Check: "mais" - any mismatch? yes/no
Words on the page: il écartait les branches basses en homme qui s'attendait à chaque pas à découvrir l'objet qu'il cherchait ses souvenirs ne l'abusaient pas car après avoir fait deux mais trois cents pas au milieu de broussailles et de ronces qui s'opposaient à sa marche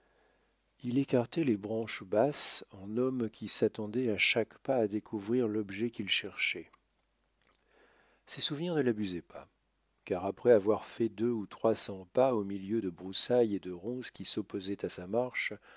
yes